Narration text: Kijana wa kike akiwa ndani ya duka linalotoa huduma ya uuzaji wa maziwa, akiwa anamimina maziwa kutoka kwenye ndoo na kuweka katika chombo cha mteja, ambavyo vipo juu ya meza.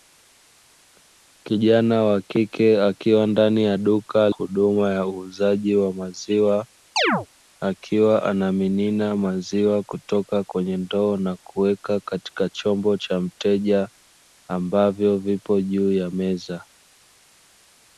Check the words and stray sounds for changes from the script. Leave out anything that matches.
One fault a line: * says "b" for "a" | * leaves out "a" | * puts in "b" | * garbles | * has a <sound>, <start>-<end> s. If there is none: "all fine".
* leaves out "linalotoa"
* has a chirp, 7.0-7.3 s